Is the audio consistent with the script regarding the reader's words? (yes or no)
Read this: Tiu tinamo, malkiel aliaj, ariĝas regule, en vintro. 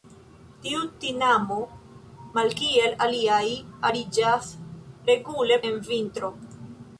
yes